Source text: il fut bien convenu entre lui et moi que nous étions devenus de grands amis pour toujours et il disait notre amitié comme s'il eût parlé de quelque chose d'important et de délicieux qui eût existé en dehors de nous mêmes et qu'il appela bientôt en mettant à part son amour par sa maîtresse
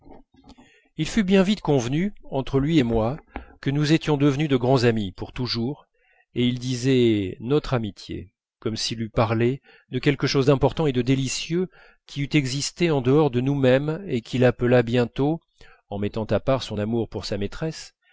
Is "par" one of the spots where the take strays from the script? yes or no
yes